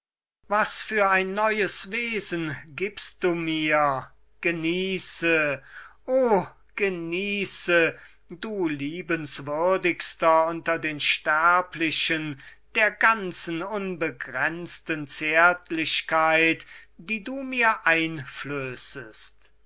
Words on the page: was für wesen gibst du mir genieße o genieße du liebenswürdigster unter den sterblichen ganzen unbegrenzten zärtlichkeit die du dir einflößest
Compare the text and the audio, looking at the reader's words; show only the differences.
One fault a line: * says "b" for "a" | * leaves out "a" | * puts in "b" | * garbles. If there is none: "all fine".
* puts in "ein neues"
* puts in "der"
* says "mir" for "dir"